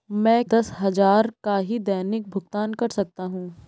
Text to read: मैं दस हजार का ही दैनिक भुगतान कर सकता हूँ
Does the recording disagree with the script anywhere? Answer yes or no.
no